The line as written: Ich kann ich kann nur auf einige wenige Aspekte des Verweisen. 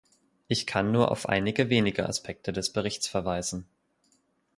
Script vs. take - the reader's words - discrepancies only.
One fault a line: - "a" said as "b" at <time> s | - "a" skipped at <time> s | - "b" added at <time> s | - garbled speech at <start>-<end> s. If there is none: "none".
- "ich kann" skipped at 0.9 s
- "Berichts" added at 2.7 s